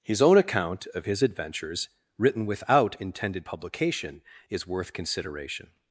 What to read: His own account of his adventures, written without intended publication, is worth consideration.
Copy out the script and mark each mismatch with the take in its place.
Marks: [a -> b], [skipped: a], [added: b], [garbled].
His own account of his adventures, written without intended publication, is worth consideration.